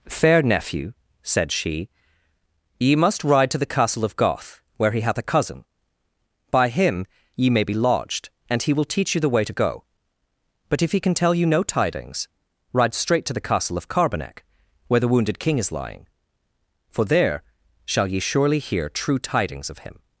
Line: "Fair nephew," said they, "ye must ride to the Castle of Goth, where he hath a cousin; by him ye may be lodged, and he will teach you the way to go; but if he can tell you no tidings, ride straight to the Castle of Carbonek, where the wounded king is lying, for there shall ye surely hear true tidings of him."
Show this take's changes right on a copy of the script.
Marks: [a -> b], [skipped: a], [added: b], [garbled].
"Fair nephew," said [they, -> she] "ye must ride to the Castle of Goth, where he hath a cousin; by him ye may be lodged, and he will teach you the way to go; but if he can tell you no tidings, ride straight to the Castle of Carbonek, where the wounded king is lying, for there shall ye surely hear true tidings of him."